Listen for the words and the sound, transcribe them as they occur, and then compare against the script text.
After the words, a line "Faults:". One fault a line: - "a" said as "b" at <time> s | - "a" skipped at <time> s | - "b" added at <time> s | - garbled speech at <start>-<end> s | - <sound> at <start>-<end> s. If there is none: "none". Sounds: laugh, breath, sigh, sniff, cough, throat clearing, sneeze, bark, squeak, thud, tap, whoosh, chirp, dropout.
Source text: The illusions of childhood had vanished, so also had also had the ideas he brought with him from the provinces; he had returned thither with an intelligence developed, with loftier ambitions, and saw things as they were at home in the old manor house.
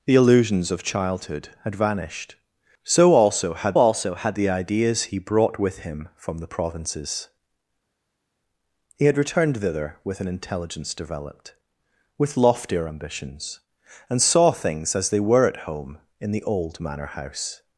The illusions of childhood had vanished, so also had also had the ideas he brought with him from the provinces; he had returned thither with an intelligence developed, with loftier ambitions, and saw things as they were at home in the old manor house.
Faults:
none